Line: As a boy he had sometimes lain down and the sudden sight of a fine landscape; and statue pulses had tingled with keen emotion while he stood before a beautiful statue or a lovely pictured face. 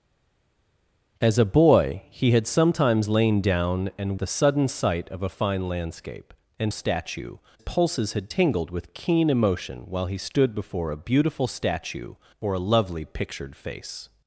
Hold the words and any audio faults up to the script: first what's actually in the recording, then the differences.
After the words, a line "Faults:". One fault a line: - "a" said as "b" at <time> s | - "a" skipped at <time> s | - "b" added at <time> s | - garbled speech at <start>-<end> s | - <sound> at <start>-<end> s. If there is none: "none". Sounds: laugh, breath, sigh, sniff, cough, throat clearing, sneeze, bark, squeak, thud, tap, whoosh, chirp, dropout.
As a boy he had sometimes lain down and the sudden sight of a fine landscape; and statue pulses had tingled with keen emotion while he stood before a beautiful statue or a lovely pictured face.
Faults:
none